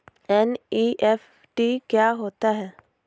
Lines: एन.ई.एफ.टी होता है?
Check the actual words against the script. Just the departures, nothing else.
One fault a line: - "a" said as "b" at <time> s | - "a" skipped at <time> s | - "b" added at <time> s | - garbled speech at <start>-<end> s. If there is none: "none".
- "क्या" added at 1.9 s